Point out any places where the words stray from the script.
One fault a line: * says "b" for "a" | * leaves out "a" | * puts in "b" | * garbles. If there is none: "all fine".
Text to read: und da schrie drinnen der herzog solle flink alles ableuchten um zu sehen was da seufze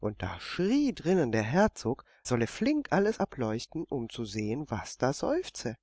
all fine